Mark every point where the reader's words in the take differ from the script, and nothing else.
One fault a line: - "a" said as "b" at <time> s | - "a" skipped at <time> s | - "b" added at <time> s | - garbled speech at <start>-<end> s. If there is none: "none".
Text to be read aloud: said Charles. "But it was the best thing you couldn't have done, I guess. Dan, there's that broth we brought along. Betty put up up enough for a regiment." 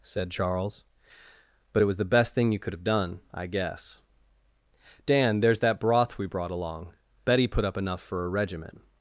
- "couldn't" said as "could" at 2.6 s
- "up" skipped at 7.8 s